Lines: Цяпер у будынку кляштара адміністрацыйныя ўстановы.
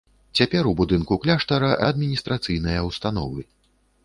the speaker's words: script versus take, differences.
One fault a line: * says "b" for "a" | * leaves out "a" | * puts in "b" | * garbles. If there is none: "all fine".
all fine